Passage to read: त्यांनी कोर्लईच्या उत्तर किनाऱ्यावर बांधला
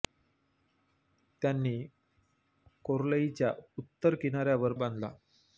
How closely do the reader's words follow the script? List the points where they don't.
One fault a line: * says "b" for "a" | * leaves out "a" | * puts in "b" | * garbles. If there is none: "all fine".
all fine